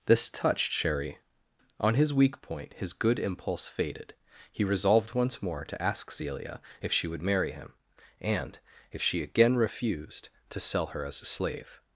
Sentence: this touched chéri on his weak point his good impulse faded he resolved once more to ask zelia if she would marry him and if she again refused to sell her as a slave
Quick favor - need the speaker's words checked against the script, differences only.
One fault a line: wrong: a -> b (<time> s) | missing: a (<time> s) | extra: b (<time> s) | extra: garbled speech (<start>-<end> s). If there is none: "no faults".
no faults